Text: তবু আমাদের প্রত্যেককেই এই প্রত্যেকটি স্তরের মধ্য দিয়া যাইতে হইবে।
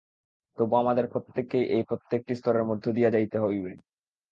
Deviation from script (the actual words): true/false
false